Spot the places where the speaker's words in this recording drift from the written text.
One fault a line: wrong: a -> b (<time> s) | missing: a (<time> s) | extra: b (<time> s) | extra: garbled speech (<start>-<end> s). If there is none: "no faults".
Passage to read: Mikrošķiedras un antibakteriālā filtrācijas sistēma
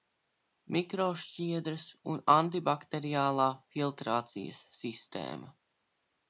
no faults